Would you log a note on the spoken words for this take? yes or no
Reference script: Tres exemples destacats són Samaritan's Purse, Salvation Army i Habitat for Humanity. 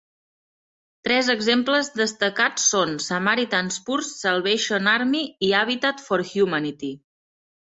no